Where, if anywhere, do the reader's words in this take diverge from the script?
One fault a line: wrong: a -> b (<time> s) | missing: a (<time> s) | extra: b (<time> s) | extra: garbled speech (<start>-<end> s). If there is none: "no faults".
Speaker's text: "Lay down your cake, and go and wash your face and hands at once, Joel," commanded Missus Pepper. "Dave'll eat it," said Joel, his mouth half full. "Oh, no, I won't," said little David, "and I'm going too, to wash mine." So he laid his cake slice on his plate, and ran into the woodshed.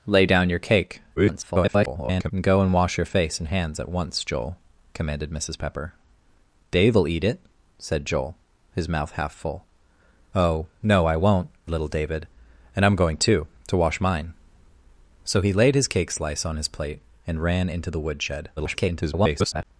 extra: garbled speech (1.2-2.3 s)
missing: said (11.5 s)
extra: garbled speech (18.6-19.6 s)